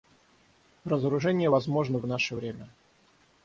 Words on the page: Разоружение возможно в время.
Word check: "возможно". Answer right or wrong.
right